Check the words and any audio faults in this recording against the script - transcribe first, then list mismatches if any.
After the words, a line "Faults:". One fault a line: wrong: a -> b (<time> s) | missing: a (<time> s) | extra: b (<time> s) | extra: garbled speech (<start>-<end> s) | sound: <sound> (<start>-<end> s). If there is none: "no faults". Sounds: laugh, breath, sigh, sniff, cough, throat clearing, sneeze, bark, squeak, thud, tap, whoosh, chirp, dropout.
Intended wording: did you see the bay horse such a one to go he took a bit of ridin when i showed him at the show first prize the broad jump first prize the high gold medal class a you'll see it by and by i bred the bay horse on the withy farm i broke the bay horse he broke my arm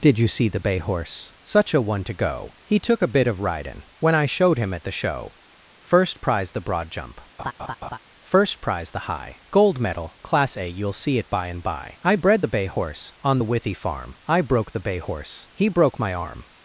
did you see the bay horse such a one to go he took a bit of ridin when i showed him at the show first prize the broad jump first prize the high gold medal class a you'll see it by and by i bred the bay horse on the withy farm i broke the bay horse he broke my arm
Faults:
sound: laugh (7.4-8.0 s)